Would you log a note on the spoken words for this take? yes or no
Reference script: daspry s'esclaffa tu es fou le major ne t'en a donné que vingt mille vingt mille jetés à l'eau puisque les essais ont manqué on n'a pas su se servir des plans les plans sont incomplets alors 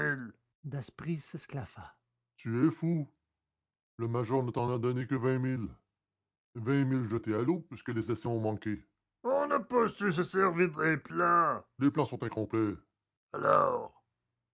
no